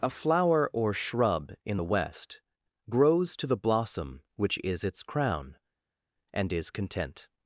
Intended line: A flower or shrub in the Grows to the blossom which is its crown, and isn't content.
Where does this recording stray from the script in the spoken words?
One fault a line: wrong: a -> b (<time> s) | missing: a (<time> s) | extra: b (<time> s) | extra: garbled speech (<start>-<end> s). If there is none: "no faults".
extra: West (1.8 s)
wrong: isn't -> is (6.5 s)